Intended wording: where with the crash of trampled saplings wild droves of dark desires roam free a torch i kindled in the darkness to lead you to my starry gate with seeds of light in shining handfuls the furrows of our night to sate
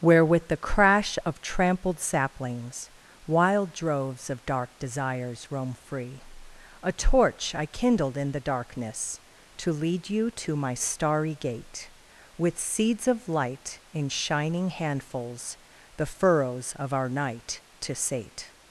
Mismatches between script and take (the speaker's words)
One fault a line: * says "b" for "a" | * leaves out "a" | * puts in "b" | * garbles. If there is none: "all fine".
all fine